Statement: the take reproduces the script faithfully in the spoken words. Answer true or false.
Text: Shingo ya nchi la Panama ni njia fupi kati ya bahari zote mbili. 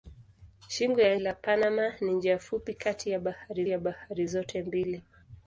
false